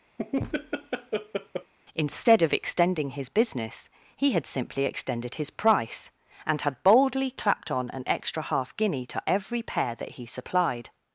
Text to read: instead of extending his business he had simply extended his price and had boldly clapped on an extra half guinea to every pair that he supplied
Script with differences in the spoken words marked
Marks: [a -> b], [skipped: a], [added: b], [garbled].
instead of extending his business he had simply extended his price and had boldly clapped on an extra half guinea to every pair that he supplied